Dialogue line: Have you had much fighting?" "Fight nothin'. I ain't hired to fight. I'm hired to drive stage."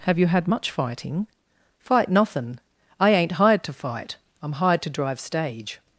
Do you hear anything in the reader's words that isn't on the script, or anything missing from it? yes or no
no